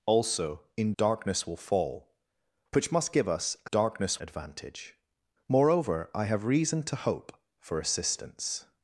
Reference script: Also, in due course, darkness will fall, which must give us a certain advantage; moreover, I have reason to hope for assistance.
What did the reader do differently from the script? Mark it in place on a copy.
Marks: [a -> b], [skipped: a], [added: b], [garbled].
Also, in [skipped: due course,] darkness will fall, which must give us a [certain -> darkness] advantage; moreover, I have reason to hope for assistance.